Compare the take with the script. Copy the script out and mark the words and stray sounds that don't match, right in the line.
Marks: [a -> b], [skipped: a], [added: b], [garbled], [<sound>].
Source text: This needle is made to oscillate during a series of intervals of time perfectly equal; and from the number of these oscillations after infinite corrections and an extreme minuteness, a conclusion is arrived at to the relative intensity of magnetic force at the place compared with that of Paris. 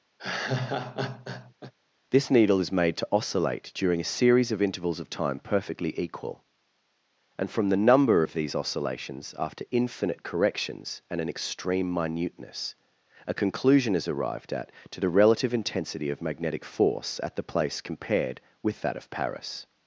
[laugh] This needle is made to oscillate during a series of intervals of time perfectly equal; and from the number of these oscillations after infinite corrections and an extreme minuteness, a conclusion is arrived at to the relative intensity of magnetic force at the place compared with that of Paris.